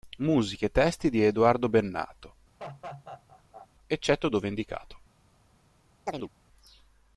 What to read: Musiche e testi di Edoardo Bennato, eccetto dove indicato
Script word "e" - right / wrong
right